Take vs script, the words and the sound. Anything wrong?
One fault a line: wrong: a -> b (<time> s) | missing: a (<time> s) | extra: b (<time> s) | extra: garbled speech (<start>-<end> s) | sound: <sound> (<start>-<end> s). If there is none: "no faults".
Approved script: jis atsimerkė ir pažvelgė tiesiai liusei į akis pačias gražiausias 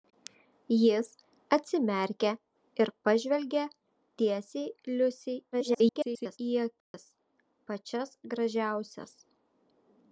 extra: garbled speech (5.5-6.4 s)
sound: dropout (6.8-6.9 s)